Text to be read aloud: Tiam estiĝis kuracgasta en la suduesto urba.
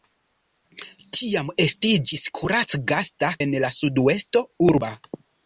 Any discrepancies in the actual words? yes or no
no